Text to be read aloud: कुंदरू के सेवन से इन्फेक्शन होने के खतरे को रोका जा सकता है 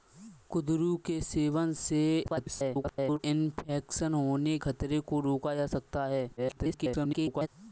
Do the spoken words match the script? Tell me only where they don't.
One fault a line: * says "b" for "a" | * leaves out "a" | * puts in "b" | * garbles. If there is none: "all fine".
* garbles
* leaves out "के"
* garbles